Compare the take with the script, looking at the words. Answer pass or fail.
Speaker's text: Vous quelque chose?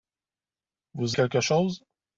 pass